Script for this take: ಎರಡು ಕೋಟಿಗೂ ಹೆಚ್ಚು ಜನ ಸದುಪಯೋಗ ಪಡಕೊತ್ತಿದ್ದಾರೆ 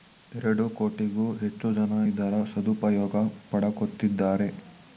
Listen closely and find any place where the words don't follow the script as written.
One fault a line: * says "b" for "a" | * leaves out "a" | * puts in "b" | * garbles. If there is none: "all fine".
* puts in "ಇದರ"